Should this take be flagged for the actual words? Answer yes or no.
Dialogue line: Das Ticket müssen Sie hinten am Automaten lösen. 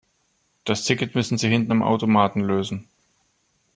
no